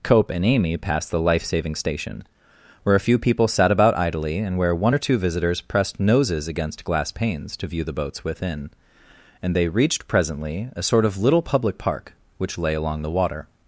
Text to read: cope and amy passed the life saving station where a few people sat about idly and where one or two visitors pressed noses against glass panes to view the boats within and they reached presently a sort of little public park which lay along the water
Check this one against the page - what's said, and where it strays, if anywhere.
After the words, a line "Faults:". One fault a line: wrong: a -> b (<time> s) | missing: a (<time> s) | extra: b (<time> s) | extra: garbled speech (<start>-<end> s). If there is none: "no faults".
cope and amy passed the life saving station where a few people sat about idly and where one or two visitors pressed noses against glass panes to view the boats within and they reached presently a sort of little public park which lay along the water
Faults:
no faults